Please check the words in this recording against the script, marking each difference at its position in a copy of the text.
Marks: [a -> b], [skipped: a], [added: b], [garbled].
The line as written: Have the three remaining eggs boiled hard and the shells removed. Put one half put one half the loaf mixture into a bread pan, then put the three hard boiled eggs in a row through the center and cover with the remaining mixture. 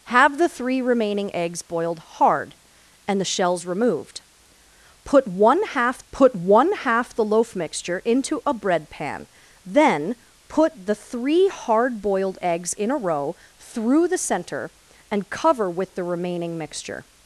Have the three remaining eggs boiled hard and the shells removed. Put one half put one half the loaf mixture into a bread pan, then put the three hard boiled eggs in a row through the center and cover with the remaining mixture.